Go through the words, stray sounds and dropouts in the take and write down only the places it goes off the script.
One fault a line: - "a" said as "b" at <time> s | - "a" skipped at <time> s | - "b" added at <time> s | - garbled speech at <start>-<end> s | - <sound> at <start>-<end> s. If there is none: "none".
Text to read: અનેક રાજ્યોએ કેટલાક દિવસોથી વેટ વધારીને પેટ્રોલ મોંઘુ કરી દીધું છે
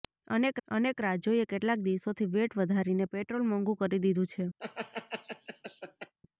- "અનેક" added at 0.7 s
- laugh at 4.6-6.1 s